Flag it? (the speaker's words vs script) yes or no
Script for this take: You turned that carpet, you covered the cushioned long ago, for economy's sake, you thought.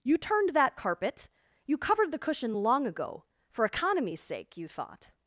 yes